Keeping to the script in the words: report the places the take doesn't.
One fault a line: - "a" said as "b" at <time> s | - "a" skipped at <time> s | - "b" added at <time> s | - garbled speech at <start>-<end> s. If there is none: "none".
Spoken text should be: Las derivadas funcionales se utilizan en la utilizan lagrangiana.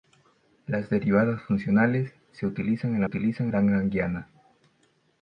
none